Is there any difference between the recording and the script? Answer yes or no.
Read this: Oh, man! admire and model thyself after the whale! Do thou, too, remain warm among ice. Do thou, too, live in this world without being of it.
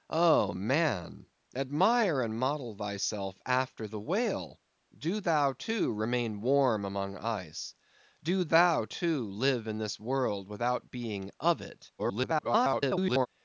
yes